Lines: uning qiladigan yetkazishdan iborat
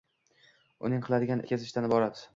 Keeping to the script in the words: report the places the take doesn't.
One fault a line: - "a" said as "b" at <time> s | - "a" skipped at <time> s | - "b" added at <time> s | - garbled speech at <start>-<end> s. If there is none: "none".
none